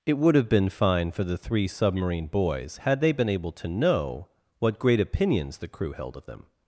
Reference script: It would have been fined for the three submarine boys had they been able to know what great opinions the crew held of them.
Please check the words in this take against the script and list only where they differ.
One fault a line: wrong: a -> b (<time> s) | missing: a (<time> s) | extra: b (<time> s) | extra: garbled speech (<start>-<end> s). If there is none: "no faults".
wrong: fined -> fine (0.7 s)